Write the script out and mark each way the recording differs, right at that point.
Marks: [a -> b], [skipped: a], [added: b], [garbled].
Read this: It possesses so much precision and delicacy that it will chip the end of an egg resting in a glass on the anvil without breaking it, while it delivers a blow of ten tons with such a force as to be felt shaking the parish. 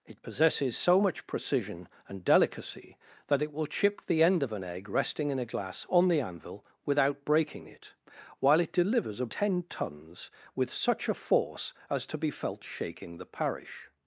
It possesses so much precision and delicacy that it will chip the end of an egg resting in a glass on the anvil without breaking it, while it delivers a [skipped: blow of] ten tons with such a force as to be felt shaking the parish.